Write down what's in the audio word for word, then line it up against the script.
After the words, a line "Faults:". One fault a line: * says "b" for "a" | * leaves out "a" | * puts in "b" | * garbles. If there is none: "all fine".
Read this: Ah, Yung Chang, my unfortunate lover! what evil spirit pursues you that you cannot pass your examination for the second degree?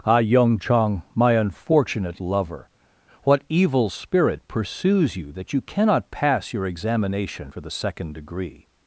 Ah, Yung Chang, my unfortunate lover! what evil spirit pursues you that you cannot pass your examination for the second degree?
Faults:
all fine